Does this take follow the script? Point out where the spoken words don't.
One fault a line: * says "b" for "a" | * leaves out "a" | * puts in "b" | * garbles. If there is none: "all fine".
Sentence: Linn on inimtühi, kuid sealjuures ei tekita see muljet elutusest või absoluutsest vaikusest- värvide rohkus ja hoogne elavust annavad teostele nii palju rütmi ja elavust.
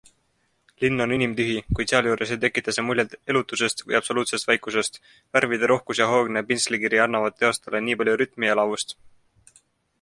* says "pintslikiri" for "elavust"